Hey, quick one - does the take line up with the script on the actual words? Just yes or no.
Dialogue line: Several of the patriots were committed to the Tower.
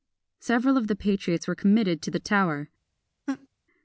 yes